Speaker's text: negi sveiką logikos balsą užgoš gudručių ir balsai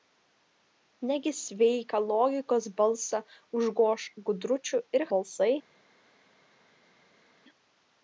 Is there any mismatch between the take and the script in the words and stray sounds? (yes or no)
no